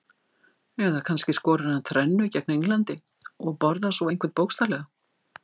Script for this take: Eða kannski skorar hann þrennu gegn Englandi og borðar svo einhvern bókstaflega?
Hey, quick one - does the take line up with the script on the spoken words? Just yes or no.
yes